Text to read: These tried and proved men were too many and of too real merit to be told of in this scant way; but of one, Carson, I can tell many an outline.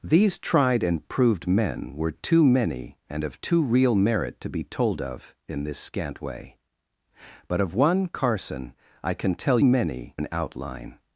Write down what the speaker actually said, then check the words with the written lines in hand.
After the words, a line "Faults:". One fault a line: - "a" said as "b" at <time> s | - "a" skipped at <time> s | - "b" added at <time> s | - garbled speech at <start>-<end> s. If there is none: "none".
These tried and proved men were too many and of too real merit to be told of in this scant way; but of one, Carson, I can tell many an outline.
Faults:
none